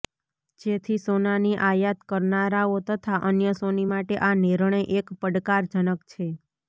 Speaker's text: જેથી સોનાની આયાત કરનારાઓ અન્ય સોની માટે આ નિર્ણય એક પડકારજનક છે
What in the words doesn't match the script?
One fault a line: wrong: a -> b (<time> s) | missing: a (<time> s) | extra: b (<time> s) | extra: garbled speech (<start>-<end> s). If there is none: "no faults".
extra: તથા (2.9 s)